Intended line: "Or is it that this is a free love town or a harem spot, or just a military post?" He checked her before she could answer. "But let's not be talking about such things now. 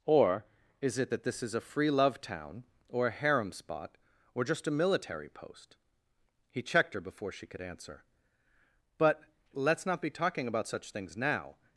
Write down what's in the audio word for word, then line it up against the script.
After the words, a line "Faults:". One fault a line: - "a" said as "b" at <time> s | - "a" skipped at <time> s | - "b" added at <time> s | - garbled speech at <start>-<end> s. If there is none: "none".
"Or is it that this is a free love town or a harem spot, or just a military post?" He checked her before she could answer. "But let's not be talking about such things now.
Faults:
none